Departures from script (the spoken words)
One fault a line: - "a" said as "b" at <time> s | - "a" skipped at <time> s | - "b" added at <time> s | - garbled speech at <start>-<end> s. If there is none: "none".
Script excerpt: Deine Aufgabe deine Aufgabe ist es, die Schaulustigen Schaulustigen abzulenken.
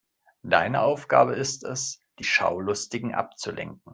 - "deine Aufgabe" skipped at 1.4 s
- "Schaulustigen" skipped at 3.1 s